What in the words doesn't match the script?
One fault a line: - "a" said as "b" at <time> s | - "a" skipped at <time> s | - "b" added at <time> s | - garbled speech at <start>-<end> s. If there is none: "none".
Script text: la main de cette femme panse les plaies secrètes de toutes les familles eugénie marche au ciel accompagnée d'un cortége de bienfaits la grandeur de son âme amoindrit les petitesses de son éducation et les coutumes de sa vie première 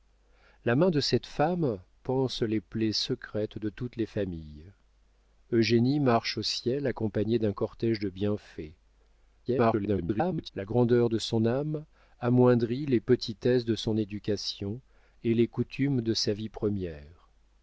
- garbled speech at 9.4-10.5 s